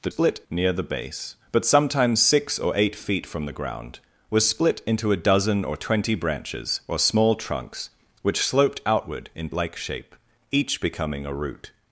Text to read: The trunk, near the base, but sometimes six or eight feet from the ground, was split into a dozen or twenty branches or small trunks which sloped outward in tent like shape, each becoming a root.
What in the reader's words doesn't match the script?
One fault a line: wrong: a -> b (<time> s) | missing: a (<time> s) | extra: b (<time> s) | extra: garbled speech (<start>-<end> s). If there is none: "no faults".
wrong: trunk -> split (0.1 s)
missing: tent (9.5 s)